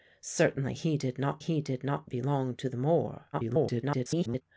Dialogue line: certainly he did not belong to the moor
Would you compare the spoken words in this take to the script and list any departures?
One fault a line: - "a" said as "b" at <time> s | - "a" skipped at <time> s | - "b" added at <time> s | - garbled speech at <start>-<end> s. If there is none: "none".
- "he did not" added at 1.4 s
- garbled speech at 3.3-4.4 s